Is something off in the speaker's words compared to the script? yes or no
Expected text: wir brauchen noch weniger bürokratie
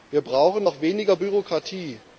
no